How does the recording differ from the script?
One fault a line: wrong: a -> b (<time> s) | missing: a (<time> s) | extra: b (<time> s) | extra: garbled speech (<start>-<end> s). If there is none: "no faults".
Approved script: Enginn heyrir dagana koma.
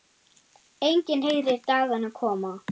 no faults